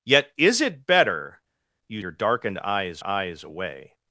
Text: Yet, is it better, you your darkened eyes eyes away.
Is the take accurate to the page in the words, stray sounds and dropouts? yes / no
yes